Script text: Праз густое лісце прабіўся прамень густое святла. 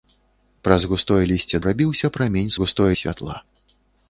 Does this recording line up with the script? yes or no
yes